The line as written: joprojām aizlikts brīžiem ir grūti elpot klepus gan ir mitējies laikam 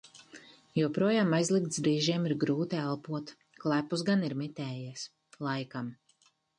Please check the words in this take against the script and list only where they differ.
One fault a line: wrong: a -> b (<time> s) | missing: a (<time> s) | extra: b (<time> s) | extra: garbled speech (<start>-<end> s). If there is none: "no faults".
no faults